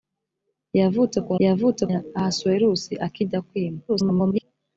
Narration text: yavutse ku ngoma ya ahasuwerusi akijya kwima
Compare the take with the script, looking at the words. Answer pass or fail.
fail